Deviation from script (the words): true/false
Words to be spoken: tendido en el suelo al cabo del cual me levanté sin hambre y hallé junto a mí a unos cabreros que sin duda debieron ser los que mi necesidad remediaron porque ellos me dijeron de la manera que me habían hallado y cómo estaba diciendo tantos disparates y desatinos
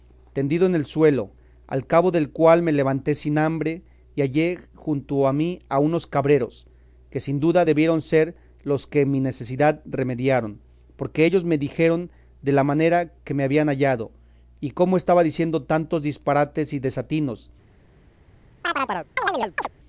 false